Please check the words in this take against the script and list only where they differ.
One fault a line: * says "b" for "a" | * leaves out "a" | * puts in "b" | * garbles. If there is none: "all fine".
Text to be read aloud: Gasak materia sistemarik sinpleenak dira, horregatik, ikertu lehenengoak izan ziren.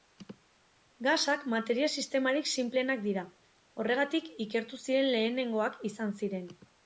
* puts in "ziren"